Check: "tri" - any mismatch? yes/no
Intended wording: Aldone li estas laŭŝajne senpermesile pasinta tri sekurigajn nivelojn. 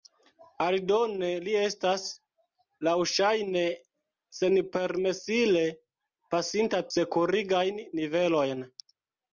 yes